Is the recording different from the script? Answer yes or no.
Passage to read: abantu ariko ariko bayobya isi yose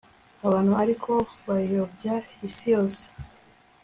yes